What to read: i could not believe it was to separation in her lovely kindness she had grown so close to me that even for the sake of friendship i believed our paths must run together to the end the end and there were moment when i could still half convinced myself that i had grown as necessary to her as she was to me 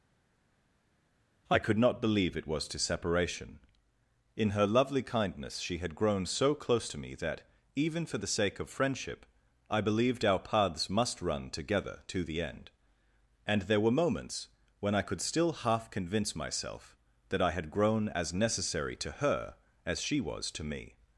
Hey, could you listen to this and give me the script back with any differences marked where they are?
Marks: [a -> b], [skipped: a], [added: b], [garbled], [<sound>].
i could not believe it was to separation in her lovely kindness she had grown so close to me that even for the sake of friendship i believed our paths must run together to the end [skipped: the end] and there were [moment -> moments] when i could still half [convinced -> convince] myself that i had grown as necessary to her as she was to me